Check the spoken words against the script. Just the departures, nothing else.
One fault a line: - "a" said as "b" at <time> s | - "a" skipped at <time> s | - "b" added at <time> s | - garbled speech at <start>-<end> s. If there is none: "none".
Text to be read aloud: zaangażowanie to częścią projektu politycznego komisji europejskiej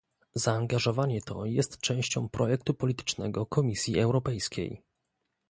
- "jest" added at 1.4 s